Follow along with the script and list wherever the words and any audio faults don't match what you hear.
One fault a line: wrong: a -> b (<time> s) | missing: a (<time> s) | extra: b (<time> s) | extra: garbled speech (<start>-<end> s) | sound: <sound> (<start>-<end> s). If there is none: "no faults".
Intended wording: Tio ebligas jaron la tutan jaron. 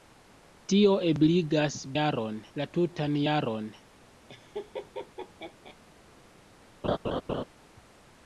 sound: laugh (4.3-5.8 s)
sound: laugh (6.8-7.4 s)